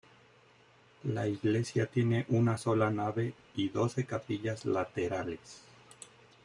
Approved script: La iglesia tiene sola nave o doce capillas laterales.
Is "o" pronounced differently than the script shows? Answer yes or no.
yes